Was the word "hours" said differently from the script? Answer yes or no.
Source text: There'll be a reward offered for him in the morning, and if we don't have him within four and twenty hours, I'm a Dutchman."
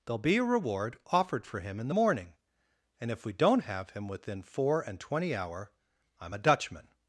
yes